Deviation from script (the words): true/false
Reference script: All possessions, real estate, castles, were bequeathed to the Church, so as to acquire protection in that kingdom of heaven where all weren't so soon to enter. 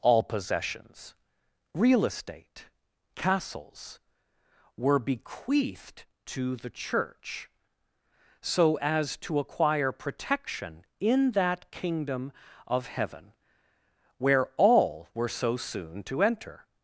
true